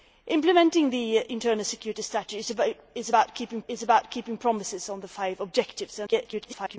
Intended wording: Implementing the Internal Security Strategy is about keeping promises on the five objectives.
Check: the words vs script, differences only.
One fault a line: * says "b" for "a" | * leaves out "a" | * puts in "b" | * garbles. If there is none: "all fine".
* puts in "is about keeping"
* garbles